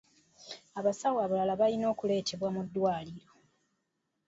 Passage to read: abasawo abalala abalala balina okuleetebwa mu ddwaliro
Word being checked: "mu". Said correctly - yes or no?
yes